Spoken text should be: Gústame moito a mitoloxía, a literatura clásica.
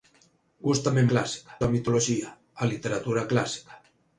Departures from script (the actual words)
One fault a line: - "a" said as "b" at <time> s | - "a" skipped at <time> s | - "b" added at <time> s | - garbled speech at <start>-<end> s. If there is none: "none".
- "moito" said as "clásica" at 1.1 s